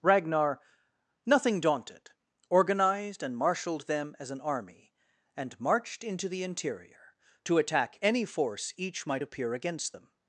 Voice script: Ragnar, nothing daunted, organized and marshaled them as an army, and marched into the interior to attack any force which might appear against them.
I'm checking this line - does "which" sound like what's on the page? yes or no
no